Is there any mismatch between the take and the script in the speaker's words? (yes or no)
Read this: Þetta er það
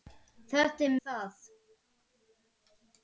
no